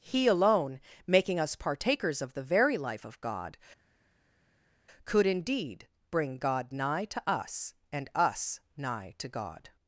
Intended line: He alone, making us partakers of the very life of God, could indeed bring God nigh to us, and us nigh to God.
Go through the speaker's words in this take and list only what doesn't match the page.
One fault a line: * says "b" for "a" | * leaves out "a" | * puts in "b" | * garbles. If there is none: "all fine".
all fine